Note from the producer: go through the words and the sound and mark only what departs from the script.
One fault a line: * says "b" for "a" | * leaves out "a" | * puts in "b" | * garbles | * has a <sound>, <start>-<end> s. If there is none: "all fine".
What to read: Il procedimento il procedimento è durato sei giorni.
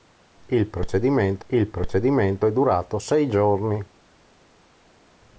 all fine